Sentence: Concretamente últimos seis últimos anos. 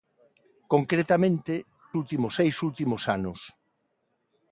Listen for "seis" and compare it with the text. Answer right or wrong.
right